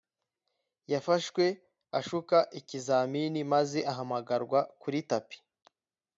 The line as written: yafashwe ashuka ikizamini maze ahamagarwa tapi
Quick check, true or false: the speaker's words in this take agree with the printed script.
false